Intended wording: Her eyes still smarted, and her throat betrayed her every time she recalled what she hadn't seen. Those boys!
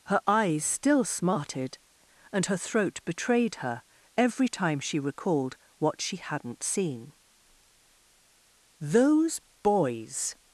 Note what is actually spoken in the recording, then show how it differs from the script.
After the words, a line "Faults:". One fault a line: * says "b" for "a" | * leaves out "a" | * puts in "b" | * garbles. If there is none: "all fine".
Her eyes still smarted, and her throat betrayed her every time she recalled what she hadn't seen. Those boys!
Faults:
all fine